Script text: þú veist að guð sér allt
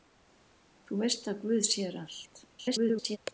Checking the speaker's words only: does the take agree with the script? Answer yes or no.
no